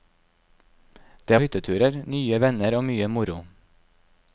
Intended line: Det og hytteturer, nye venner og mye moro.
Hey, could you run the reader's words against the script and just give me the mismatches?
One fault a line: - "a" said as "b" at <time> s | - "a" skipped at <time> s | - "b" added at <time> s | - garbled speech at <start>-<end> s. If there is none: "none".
none